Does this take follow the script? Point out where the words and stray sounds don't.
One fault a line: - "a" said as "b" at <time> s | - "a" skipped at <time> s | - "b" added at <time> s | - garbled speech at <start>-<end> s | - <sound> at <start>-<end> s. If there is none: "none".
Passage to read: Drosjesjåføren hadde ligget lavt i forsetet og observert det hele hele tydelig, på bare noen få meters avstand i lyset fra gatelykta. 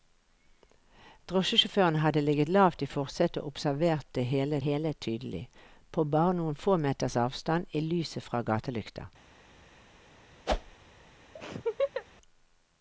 - whoosh at 10.5-10.8 s
- laugh at 11.4-12.1 s